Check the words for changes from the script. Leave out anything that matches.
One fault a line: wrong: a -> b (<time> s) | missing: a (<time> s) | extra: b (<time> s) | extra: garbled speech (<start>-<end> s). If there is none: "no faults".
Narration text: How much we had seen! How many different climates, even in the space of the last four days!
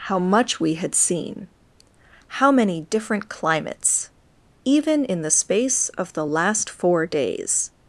no faults